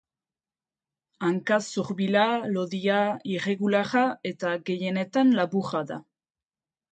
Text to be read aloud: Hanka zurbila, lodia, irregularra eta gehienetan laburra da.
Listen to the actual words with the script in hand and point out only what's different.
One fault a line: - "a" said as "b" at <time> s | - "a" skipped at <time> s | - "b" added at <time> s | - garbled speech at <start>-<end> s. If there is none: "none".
none